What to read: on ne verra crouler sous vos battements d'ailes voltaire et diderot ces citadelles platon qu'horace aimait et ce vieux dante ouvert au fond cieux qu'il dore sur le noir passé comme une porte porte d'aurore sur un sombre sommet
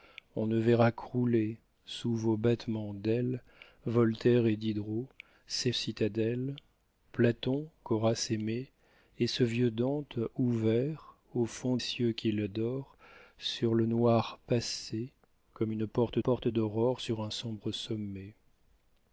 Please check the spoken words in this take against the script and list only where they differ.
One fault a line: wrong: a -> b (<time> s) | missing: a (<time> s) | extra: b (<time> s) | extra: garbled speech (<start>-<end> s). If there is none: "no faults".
no faults